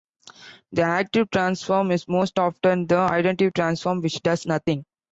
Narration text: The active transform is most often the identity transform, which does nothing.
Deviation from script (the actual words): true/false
false